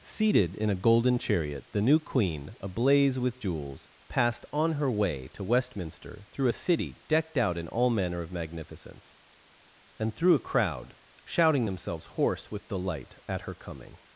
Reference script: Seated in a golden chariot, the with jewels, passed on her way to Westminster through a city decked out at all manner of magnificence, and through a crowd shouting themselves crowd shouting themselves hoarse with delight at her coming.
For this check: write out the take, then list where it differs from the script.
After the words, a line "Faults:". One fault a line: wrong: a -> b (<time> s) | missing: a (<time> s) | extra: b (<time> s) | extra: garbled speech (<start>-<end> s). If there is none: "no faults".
Seated in a golden chariot, the new Queen, ablaze with jewels, passed on her way to Westminster through a city decked out in all manner of magnificence, and through a crowd shouting themselves hoarse with delight at her coming.
Faults:
extra: new Queen ablaze (1.8 s)
wrong: at -> in (7.6 s)
missing: crowd shouting themselves (12.1 s)